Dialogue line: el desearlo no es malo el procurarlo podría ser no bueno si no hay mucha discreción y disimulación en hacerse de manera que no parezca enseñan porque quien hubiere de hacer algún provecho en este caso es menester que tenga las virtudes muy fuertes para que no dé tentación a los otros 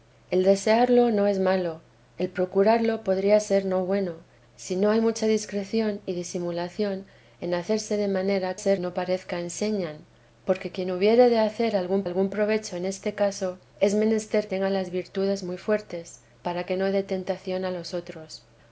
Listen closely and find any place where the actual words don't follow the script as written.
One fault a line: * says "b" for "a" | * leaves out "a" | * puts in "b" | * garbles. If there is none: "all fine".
* says "ser" for "que"
* puts in "algún"
* leaves out "que"